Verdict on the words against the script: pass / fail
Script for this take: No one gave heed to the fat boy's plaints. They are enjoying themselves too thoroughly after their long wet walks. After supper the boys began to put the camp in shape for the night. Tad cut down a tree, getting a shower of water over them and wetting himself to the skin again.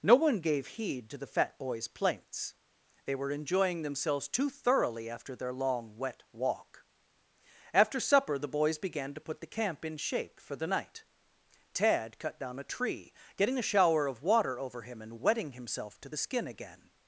fail